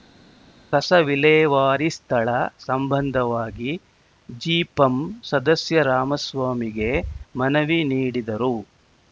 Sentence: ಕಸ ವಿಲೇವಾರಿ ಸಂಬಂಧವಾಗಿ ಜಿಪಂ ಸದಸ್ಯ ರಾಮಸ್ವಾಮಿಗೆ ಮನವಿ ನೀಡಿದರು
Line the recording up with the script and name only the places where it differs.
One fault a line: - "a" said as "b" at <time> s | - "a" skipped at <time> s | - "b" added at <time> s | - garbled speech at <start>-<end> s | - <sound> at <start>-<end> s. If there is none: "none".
- "ಸ್ಥಳ" added at 1.9 s